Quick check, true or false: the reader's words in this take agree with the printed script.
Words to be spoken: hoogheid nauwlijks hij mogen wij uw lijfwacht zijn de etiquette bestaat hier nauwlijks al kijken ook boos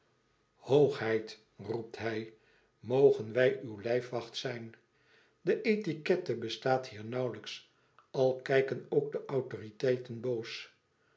false